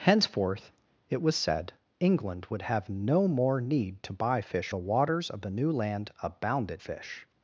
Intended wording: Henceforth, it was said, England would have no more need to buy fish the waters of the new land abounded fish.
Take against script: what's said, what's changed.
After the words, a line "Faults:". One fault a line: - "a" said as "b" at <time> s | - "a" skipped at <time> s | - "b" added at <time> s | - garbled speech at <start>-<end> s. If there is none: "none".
Henceforth, it was said, England would have no more need to buy fish the waters of the new land abounded fish.
Faults:
none